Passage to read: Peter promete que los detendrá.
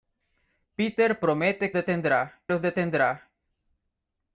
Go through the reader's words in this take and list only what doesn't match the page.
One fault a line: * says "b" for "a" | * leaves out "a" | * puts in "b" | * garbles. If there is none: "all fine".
* says "detendrá" for "que"